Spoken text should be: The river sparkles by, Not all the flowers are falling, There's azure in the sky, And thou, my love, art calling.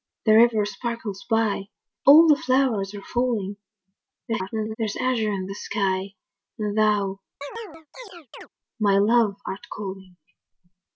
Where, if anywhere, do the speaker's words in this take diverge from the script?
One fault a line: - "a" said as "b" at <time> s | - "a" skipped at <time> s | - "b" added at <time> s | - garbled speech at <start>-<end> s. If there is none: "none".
- "Not" skipped at 1.6 s
- garbled speech at 4.3-4.8 s